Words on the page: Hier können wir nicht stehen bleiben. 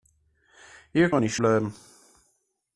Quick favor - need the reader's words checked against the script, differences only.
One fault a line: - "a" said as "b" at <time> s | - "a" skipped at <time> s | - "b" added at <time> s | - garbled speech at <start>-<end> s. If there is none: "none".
- "können" skipped at 1.1 s
- "stehen" skipped at 1.4 s